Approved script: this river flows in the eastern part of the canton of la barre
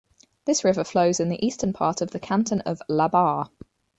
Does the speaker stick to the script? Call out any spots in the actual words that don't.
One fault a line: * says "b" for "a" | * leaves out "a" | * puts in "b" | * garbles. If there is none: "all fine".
all fine